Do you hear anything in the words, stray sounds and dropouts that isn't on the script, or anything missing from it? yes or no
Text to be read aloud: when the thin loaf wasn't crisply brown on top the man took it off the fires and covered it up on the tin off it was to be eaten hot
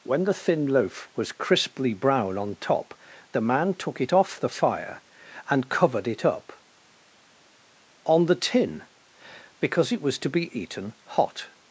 yes